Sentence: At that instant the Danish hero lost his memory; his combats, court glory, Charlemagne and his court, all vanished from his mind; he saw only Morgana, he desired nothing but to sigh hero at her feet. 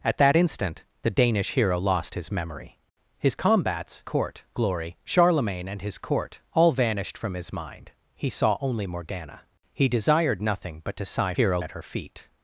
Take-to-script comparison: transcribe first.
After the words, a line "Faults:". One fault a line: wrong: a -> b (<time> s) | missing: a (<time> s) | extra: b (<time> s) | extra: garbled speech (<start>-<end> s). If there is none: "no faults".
At that instant the Danish hero lost his memory; his combats, court glory, Charlemagne and his court, all vanished from his mind; he saw only Morgana, he desired nothing but to sigh hero at her feet.
Faults:
no faults